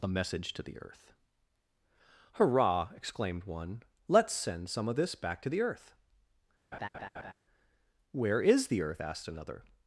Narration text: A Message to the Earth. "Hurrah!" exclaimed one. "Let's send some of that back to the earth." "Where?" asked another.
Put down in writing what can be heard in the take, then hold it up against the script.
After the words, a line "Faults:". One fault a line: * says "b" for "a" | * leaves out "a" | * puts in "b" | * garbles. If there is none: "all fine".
A Message to the Earth. "Hurrah!" exclaimed one. "Let's send some of this back to the earth." "Where is the earth?" asked another.
Faults:
* says "this" for "that"
* puts in "is the earth"